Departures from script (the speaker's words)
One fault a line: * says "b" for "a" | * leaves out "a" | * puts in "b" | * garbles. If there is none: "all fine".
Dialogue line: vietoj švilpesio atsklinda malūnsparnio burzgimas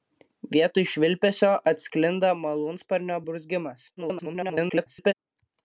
* garbles